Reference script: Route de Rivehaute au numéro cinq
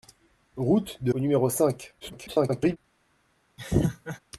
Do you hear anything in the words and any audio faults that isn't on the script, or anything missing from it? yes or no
yes